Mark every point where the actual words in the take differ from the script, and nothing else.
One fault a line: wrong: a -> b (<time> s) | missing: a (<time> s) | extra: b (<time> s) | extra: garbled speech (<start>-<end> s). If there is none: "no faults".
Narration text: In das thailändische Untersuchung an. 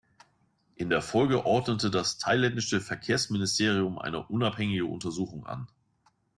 extra: der Folge ordnete (0.9 s)
extra: Verkehrsministerium eine unabhängige (2.8 s)